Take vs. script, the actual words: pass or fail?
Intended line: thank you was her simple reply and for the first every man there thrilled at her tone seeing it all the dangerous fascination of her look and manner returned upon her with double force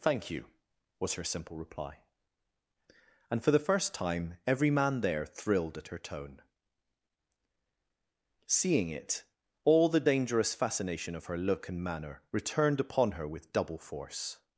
fail